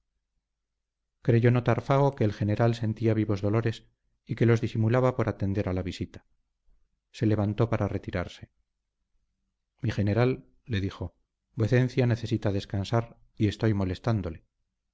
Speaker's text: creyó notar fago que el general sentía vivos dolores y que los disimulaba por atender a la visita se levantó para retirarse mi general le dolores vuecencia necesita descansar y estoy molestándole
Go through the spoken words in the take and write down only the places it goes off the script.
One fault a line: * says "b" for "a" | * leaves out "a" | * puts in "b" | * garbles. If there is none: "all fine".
* says "dijo" for "dolores"